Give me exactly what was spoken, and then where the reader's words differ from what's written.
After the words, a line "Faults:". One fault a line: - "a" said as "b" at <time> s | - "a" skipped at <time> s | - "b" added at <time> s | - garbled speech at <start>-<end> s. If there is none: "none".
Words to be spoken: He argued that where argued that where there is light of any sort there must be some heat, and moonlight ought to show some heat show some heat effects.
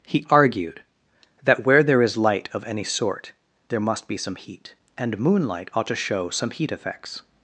He argued that where there is light of any sort there must be some heat, and moonlight ought to show some heat effects.
Faults:
- "argued that where" skipped at 1.8 s
- "show some heat" skipped at 6.7 s